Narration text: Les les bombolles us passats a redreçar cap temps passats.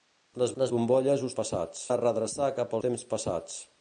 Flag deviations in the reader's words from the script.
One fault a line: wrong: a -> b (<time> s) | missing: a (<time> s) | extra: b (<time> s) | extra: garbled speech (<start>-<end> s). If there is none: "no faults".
no faults